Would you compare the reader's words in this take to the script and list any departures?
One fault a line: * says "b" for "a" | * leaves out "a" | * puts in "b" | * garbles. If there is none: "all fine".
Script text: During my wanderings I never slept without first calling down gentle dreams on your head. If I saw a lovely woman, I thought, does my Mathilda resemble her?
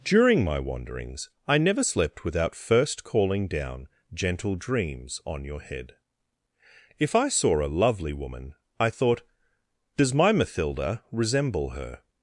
all fine